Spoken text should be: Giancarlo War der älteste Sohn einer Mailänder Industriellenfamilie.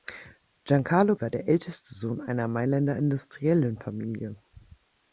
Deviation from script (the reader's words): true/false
false